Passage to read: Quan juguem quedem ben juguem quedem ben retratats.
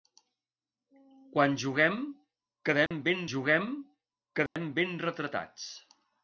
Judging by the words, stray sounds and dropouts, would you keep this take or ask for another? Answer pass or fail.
fail